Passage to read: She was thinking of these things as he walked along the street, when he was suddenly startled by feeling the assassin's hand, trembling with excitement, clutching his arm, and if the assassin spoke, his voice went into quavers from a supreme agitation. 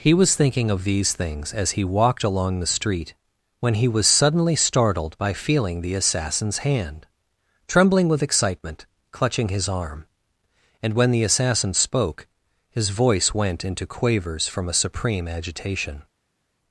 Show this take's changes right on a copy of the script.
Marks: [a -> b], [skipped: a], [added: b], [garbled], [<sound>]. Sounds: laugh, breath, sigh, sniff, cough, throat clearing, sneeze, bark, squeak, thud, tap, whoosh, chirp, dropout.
[She -> He] was thinking of these things as he walked along the street, when he was suddenly startled by feeling the assassin's hand, trembling with excitement, clutching his arm, and [if -> when] the assassin spoke, his voice went into quavers from a supreme agitation.